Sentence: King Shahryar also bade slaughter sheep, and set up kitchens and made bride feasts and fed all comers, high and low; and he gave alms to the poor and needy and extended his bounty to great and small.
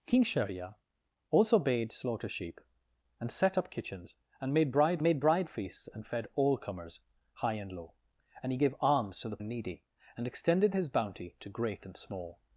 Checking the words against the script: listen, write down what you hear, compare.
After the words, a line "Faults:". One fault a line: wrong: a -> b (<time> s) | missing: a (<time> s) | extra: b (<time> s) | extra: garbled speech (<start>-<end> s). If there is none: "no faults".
King Shahryar also bade slaughter sheep, and set up kitchens and made bride made bride feasts and fed all comers, high and low; and he gave alms to the and needy and extended his bounty to great and small.
Faults:
extra: made bride (5.0 s)
missing: poor (9.4 s)